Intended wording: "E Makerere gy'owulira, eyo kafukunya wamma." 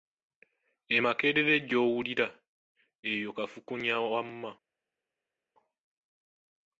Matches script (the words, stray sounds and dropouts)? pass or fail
pass